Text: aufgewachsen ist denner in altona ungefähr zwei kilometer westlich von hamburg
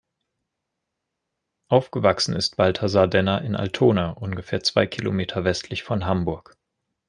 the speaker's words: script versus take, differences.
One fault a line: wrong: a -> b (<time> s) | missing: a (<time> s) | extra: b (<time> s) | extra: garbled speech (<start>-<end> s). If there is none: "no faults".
extra: balthasar (2.6 s)